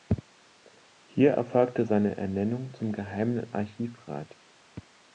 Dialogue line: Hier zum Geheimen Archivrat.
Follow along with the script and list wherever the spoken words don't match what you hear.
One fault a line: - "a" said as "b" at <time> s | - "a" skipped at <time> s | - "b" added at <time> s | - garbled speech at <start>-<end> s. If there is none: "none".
- "erfolgte seine Ernennung" added at 1.3 s